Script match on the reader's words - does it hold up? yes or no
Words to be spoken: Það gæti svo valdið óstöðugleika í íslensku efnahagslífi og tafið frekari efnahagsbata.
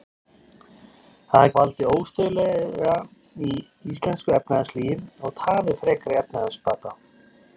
no